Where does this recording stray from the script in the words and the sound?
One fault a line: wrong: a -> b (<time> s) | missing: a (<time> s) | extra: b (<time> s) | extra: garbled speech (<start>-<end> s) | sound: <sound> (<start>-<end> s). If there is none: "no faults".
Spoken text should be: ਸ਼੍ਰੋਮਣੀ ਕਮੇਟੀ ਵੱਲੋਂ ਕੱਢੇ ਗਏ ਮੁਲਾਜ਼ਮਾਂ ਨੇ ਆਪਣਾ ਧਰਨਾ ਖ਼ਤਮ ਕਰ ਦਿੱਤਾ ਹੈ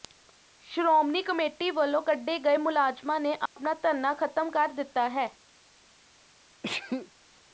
sound: dropout (3.5-3.6 s)
sound: sneeze (6.6-7.1 s)